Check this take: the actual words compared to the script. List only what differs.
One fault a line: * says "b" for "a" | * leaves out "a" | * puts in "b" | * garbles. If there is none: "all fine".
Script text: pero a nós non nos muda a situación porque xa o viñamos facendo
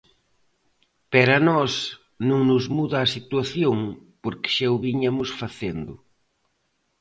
all fine